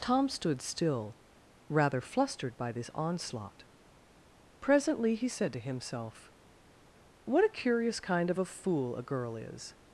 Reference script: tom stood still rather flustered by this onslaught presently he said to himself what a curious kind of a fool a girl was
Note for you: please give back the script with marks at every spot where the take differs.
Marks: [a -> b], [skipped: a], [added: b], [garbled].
tom stood still rather flustered by this onslaught presently he said to himself what a curious kind of a fool a girl [was -> is]